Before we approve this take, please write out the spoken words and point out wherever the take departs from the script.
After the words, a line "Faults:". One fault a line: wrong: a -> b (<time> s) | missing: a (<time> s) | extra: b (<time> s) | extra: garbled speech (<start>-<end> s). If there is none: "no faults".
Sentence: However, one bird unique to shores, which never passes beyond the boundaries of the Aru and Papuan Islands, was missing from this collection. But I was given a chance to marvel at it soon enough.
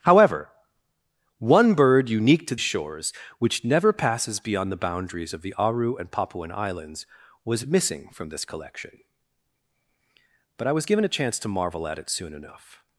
However, one bird unique to shores, which never passes beyond the boundaries of the Aru and Papuan Islands, was missing from this collection. But I was given a chance to marvel at it soon enough.
Faults:
no faults